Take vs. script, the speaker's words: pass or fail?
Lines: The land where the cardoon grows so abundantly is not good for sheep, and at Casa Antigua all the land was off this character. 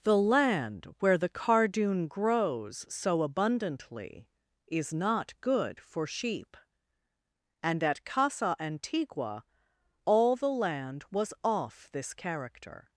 pass